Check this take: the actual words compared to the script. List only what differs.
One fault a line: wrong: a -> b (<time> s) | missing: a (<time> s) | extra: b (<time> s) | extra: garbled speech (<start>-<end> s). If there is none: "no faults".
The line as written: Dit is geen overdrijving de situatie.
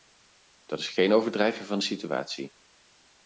wrong: Dit -> Dat (0.7 s)
extra: van (1.6 s)